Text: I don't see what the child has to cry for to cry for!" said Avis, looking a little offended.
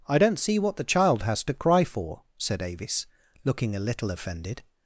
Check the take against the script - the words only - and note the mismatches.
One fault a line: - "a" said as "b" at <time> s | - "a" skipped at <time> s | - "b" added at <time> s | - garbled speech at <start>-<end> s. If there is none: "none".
- "to cry for" skipped at 2.2 s